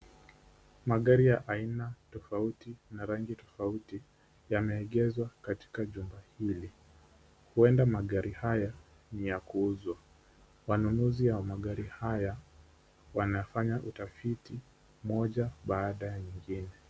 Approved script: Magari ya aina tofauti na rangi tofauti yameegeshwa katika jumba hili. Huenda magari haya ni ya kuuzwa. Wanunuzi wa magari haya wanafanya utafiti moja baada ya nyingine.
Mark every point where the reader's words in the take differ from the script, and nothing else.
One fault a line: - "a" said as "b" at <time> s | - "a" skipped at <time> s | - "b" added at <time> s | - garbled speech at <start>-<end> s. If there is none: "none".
none